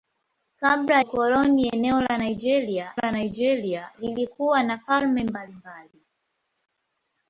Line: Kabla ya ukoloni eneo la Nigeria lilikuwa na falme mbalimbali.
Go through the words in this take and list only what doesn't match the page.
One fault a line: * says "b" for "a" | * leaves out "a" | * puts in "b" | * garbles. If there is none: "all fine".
* leaves out "ya"
* puts in "la Nigeria"